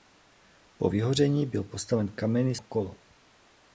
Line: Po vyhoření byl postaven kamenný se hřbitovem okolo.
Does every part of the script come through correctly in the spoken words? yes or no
no